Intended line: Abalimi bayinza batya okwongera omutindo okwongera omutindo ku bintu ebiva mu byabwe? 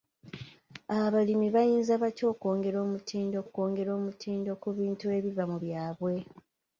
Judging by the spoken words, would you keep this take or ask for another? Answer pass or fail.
pass